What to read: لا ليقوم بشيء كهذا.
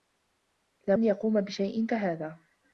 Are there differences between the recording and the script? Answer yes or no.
no